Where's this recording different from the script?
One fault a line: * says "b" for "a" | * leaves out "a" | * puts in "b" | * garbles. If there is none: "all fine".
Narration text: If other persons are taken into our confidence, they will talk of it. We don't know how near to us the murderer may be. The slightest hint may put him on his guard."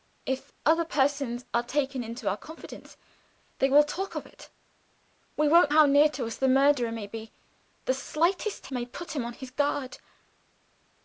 * leaves out "know"
* leaves out "hint"